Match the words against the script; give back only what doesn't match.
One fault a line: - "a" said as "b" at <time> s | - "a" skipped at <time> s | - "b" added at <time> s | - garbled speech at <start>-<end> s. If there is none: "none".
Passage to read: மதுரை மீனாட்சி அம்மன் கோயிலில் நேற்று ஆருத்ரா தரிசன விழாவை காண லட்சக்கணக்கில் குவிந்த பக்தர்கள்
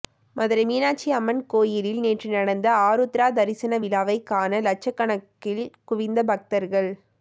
- "நடந்த" added at 2.3 s